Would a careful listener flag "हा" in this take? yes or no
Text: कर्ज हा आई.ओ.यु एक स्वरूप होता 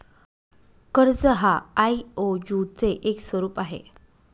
no